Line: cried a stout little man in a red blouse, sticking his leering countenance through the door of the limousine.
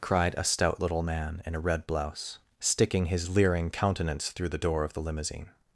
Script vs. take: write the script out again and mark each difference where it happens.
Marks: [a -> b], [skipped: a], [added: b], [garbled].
cried a stout little man in a red blouse, sticking his leering countenance through the door of the limousine.